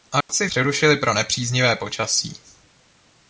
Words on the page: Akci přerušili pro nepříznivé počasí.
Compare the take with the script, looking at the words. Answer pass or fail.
pass